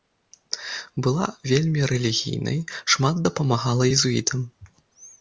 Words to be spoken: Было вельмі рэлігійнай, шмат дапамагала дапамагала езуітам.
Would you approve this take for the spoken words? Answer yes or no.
no